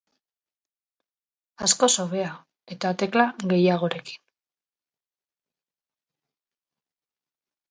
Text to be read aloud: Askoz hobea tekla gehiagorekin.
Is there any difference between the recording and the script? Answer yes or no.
yes